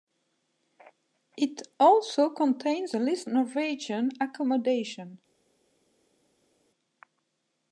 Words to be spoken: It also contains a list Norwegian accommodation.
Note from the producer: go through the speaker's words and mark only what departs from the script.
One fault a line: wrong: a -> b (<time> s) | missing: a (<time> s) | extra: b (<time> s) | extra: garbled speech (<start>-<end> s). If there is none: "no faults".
no faults